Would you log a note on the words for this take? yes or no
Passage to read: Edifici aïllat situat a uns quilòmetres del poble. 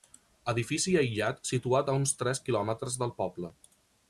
yes